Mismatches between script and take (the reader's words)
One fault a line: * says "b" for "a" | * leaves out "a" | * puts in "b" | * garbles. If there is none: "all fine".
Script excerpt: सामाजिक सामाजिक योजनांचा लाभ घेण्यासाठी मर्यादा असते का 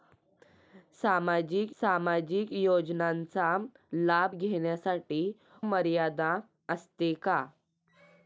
all fine